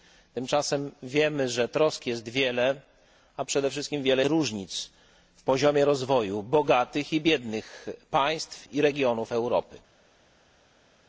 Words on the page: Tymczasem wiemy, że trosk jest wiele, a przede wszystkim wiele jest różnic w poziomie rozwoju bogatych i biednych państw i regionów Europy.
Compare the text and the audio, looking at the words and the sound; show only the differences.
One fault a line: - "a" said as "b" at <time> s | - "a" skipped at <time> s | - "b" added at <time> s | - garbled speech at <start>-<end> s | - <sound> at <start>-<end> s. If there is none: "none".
- "jest" skipped at 4.2 s